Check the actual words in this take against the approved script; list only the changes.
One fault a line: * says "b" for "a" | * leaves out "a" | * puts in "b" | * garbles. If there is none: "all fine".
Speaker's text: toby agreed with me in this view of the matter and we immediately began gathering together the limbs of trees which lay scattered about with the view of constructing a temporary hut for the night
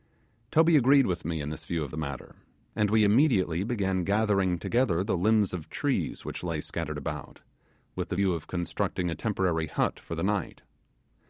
all fine